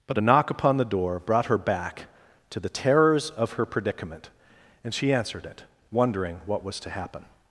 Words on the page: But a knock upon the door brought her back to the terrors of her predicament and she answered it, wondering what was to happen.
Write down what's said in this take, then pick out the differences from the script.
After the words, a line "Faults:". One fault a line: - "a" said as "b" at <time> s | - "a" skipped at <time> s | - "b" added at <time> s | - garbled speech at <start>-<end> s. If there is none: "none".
But a knock upon the door brought her back to the terrors of her predicament and she answered it, wondering what was to happen.
Faults:
none